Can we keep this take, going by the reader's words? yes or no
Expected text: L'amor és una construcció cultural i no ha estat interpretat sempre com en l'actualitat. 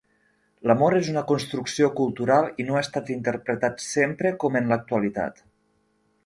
yes